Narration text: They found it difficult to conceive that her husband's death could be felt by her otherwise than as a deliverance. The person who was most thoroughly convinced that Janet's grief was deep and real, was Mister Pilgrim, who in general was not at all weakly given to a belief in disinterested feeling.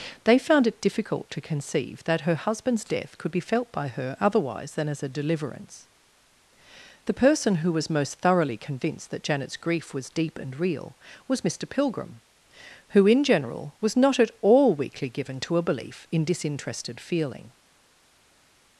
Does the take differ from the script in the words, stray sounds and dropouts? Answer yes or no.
no